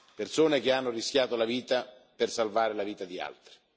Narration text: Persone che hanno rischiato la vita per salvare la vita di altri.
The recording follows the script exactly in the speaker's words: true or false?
true